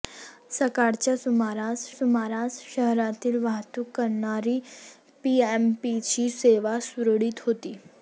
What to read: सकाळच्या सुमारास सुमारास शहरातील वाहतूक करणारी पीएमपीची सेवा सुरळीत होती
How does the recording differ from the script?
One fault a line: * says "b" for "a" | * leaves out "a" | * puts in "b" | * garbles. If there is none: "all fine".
all fine